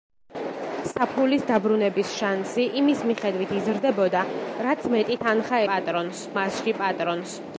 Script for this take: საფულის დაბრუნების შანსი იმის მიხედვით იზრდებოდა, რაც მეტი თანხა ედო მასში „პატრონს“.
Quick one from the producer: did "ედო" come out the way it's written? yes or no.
no